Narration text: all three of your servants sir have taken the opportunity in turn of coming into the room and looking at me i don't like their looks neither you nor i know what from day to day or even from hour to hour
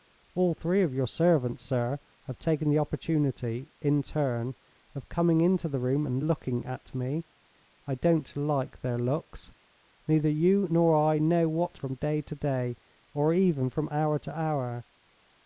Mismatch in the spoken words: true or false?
false